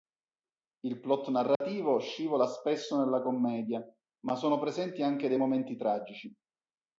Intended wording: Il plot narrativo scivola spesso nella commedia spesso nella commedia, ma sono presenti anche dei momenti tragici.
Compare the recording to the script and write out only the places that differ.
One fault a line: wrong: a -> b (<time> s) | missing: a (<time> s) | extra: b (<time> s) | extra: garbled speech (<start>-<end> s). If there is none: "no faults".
missing: spesso nella commedia (3.9 s)